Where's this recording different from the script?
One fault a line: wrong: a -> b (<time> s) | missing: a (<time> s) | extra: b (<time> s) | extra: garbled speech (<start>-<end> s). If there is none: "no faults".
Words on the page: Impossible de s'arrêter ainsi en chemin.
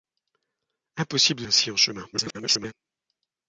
missing: s'arrêter (1.4 s)
extra: garbled speech (2.1-2.7 s)